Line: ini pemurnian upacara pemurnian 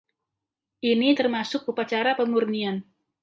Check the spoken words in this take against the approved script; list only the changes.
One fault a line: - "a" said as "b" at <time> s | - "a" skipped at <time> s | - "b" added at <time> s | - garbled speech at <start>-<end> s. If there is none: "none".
- "pemurnian" said as "termasuk" at 1.1 s